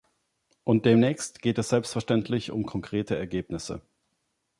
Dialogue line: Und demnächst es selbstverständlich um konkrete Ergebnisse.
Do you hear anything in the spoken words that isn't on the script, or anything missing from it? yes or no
yes